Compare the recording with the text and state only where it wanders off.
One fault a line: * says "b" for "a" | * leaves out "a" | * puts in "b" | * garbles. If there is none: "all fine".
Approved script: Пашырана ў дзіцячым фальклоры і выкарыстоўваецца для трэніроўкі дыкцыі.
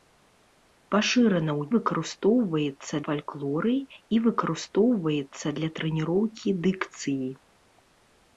* says "выкарыстоўваецца" for "дзіцячым"